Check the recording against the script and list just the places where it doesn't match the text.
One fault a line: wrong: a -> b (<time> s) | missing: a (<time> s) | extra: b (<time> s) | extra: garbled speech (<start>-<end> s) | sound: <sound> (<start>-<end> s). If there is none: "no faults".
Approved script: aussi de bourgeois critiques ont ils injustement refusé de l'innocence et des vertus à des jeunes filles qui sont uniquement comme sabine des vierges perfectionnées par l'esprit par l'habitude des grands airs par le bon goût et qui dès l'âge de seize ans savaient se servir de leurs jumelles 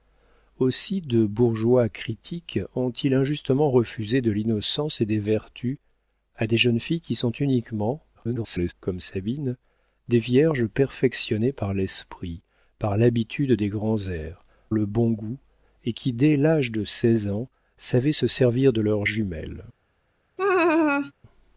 extra: garbled speech (8.1-8.7 s)
missing: par (14.4 s)
sound: laugh (20.4-21.1 s)